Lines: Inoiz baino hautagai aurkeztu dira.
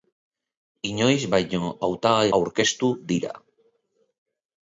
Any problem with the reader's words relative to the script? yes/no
no